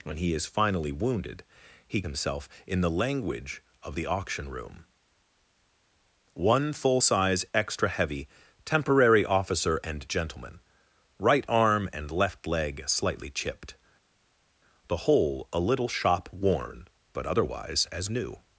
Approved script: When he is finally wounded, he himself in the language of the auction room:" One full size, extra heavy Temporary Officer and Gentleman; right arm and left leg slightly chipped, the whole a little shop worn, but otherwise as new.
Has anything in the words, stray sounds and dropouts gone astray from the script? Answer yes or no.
no